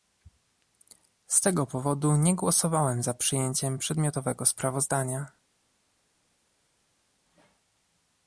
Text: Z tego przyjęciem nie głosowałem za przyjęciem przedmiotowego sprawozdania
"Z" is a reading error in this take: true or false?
false